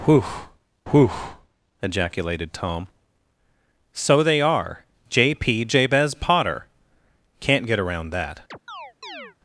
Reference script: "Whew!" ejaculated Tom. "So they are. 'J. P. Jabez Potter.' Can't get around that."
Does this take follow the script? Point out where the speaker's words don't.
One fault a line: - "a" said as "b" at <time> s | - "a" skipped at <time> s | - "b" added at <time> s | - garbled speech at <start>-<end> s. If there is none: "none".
- "whew" added at 0.9 s